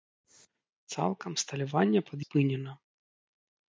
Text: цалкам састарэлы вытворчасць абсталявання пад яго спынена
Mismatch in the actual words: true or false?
true